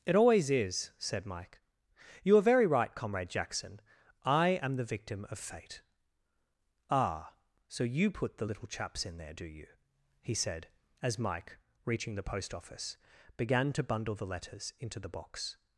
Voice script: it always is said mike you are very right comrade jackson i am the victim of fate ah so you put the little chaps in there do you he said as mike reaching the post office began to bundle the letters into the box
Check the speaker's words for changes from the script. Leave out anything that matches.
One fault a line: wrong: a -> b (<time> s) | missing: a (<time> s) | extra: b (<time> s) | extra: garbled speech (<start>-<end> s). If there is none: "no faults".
no faults